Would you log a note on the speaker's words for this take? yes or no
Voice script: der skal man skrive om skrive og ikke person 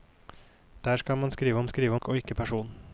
no